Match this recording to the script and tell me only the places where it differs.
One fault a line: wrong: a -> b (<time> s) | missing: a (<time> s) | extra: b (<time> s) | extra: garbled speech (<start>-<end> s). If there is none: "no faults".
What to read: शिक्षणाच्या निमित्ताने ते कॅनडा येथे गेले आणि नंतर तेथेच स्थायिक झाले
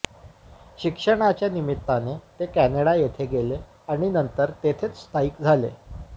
no faults